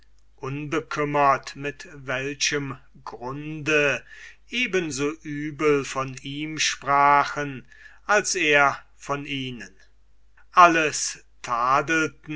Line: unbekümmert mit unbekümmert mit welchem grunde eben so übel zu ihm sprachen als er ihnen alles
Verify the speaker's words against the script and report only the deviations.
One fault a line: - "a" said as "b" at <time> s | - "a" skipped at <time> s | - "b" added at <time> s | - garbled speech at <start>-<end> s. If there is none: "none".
- "unbekümmert mit" skipped at 1.9 s
- "zu" said as "von" at 5.8 s
- "von" added at 9.0 s